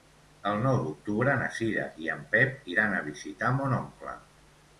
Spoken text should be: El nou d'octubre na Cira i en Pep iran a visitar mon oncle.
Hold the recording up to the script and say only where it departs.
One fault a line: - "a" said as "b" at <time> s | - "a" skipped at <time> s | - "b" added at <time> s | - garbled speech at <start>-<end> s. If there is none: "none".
none